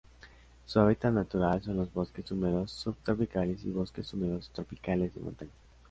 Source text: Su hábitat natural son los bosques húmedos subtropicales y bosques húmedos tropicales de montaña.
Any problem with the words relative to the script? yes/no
no